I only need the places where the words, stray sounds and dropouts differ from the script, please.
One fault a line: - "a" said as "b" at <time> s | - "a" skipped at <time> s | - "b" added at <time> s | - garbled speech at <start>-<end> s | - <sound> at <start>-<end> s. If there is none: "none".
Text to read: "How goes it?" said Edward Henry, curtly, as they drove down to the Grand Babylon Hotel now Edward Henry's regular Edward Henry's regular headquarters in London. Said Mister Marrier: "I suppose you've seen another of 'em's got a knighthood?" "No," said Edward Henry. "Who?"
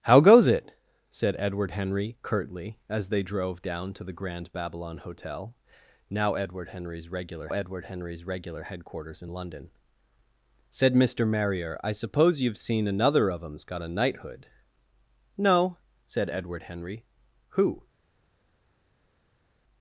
none